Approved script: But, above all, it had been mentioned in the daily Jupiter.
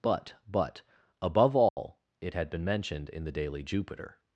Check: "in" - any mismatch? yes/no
no